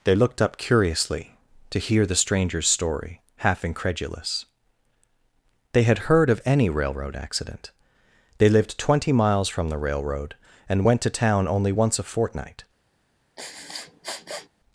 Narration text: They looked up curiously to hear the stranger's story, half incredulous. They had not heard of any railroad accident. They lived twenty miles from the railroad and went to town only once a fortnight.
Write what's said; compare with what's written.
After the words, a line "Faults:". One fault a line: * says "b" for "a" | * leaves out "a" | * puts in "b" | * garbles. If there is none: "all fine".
They looked up curiously to hear the stranger's story, half incredulous. They had heard of any railroad accident. They lived twenty miles from the railroad and went to town only once a fortnight.
Faults:
* leaves out "not"